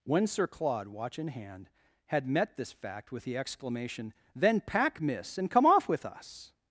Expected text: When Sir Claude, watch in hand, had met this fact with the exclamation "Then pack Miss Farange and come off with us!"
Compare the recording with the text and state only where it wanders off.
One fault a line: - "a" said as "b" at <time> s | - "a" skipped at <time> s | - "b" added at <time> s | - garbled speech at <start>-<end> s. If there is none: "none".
- "Farange" skipped at 5.4 s